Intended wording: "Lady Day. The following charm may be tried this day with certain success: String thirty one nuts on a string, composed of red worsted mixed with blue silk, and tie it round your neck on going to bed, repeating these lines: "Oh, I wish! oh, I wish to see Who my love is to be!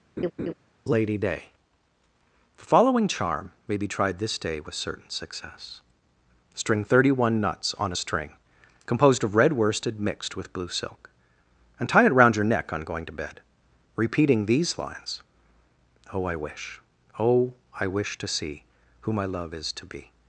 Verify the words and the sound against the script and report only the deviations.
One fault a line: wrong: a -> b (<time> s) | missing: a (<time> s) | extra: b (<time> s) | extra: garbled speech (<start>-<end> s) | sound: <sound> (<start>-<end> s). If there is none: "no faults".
sound: laugh (0.2-0.5 s)